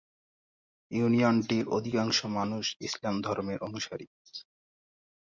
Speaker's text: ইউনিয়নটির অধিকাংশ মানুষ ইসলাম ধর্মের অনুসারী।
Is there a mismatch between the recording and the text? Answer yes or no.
no